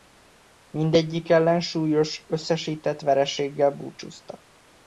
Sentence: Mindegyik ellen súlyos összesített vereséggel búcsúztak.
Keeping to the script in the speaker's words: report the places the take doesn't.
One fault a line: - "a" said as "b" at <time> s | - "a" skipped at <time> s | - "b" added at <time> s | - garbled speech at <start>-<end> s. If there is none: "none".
none